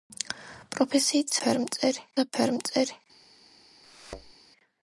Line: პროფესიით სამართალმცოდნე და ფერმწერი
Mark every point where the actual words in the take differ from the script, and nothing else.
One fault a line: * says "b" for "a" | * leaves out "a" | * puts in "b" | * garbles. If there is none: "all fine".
* says "ფერმწერი" for "სამართალმცოდნე"